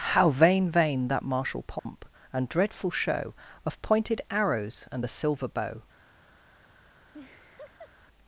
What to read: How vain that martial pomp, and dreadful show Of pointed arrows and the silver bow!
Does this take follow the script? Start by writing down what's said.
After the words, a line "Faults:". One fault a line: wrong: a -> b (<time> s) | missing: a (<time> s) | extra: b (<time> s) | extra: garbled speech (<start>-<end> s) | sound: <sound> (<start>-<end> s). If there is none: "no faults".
How vain vain that martial pomp, and dreadful show Of pointed arrows and the silver bow!
Faults:
extra: vain (0.7 s)
sound: dropout (1.8-1.9 s)
sound: laugh (7.1-7.9 s)